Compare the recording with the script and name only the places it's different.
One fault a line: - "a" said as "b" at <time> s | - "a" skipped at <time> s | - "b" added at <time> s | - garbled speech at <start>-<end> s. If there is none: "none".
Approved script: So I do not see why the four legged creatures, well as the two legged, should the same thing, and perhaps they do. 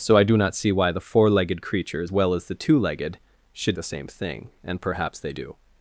none